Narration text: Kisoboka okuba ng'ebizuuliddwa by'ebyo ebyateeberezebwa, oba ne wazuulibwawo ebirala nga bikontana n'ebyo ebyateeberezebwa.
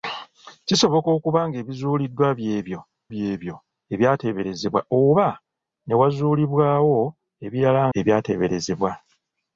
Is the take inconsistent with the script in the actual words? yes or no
yes